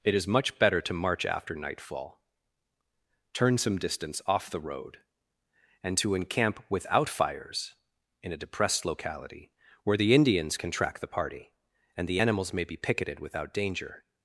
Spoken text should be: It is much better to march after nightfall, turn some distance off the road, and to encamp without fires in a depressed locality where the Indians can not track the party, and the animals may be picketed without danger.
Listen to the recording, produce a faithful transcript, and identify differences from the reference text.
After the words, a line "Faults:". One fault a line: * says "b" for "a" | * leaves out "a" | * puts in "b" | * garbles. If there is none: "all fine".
It is much better to march after nightfall, turn some distance off the road, and to encamp without fires in a depressed locality where the Indians can track the party, and the animals may be picketed without danger.
Faults:
* leaves out "not"